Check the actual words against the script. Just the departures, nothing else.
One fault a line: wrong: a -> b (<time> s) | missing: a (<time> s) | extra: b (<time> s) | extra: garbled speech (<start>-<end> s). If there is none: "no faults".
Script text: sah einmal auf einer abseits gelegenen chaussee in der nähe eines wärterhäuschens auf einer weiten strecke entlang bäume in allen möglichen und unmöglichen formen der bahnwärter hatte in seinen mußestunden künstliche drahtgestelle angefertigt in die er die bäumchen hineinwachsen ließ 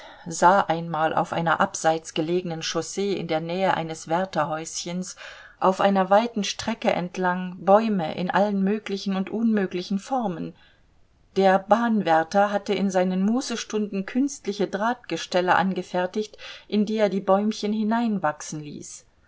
no faults